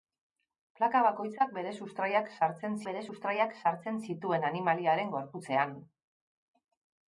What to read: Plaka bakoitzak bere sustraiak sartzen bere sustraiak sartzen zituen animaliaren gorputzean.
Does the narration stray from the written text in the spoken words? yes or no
no